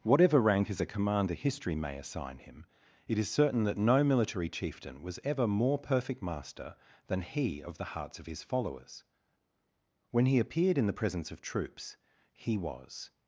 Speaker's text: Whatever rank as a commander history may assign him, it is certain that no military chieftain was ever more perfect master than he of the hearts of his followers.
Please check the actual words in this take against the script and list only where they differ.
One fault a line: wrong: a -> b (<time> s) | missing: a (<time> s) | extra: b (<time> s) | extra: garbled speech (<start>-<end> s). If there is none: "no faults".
extra: When he appeared in the presence of troops he was (10.1 s)